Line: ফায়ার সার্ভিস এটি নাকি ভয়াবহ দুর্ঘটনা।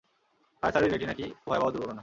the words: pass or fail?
pass